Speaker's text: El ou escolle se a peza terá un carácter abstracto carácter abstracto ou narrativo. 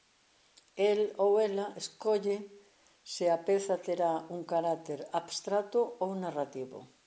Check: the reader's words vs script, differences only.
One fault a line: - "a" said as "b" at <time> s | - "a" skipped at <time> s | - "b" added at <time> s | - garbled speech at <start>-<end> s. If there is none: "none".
- "ela" added at 1.4 s
- "carácter abstracto" skipped at 6.0 s